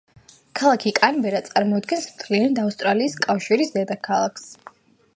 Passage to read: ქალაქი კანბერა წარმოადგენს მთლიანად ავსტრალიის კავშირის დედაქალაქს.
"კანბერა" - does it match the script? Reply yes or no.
yes